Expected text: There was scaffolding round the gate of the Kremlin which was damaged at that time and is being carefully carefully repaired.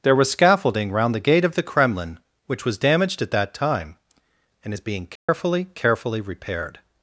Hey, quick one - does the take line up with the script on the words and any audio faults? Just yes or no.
no